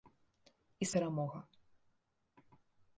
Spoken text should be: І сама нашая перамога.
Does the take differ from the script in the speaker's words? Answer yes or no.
yes